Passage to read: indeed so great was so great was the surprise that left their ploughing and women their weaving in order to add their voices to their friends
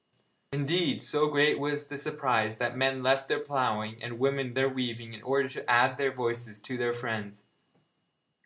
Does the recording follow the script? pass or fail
fail